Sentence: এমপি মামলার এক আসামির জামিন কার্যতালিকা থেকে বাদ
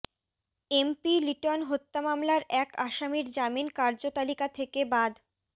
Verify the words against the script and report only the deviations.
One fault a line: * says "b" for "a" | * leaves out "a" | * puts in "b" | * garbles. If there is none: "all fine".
* puts in "লিটন হত্যা"